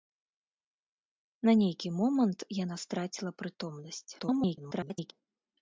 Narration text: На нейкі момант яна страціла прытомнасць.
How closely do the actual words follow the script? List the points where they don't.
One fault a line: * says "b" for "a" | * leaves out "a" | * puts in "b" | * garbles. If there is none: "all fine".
* garbles